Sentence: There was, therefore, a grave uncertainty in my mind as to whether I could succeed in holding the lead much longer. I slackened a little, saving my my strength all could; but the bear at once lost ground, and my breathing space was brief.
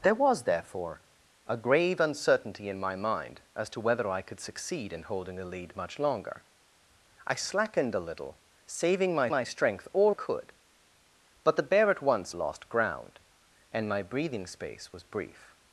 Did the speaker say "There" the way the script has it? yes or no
yes